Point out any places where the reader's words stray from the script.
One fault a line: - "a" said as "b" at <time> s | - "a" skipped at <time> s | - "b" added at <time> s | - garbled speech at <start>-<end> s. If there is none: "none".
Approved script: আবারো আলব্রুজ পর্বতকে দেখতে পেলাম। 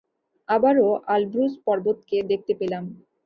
none